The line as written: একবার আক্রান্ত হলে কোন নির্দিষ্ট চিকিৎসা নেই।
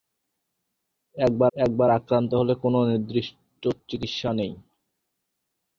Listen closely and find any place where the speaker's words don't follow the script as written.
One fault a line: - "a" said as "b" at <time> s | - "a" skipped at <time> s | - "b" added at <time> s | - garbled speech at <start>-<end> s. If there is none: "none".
- "একবার" added at 1.5 s